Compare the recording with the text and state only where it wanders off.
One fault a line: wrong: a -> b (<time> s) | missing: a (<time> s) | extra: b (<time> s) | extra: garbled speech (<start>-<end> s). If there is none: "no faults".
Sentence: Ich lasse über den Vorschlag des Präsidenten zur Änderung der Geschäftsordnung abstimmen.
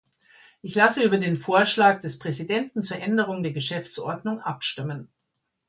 no faults